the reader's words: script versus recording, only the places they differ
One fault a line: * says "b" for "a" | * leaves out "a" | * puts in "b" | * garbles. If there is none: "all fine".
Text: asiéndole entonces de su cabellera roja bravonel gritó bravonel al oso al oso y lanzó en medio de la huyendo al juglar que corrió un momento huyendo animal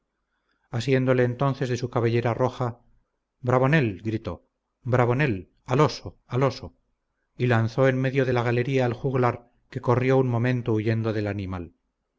* says "galería" for "huyendo"
* puts in "del"